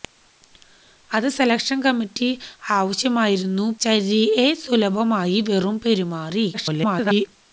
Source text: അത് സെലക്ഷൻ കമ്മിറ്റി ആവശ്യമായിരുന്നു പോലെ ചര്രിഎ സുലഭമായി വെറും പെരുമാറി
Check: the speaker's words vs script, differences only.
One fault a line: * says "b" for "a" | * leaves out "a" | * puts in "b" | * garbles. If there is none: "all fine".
* leaves out "പോലെ"
* garbles